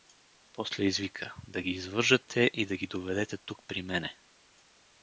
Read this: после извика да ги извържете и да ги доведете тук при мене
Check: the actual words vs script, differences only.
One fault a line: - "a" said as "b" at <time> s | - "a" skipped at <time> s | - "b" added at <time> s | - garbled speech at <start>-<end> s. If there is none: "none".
none